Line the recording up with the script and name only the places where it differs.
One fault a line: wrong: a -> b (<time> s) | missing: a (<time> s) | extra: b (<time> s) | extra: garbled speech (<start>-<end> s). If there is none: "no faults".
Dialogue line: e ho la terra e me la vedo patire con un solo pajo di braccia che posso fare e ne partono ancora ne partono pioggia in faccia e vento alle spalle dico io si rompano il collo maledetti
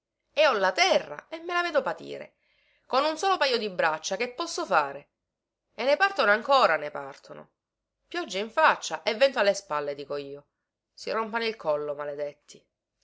no faults